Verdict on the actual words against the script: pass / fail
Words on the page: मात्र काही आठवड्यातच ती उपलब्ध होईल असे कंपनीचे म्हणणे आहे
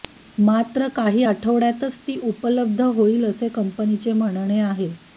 pass